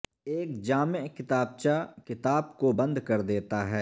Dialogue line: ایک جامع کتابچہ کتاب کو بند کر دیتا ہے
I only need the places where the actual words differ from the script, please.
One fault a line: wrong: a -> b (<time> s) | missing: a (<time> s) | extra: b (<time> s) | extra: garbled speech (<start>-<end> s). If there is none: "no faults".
no faults